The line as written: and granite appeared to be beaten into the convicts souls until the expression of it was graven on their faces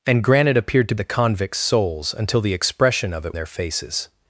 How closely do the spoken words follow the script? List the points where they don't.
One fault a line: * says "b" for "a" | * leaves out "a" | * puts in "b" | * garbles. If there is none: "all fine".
* leaves out "be beaten into"
* leaves out "was graven on"